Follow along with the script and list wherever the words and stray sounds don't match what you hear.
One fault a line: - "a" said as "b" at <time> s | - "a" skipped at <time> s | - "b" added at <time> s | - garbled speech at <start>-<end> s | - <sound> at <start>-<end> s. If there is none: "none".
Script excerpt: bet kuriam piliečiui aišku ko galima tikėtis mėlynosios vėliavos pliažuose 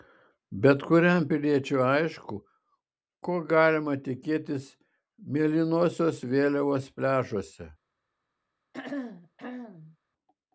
- throat clearing at 8.7-10.0 s